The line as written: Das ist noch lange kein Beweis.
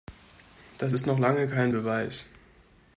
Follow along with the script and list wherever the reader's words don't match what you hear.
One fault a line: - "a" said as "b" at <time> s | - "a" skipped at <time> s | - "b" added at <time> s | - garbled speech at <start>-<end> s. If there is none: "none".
none